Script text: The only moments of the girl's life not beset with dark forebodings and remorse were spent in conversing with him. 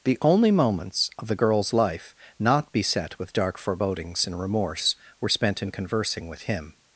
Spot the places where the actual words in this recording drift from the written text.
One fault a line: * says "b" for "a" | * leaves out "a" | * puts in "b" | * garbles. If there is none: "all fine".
all fine